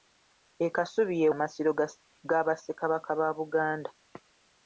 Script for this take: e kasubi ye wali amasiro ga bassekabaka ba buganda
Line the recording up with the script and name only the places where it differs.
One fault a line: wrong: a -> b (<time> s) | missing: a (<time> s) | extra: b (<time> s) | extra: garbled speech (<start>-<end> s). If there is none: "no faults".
missing: wali (1.3 s)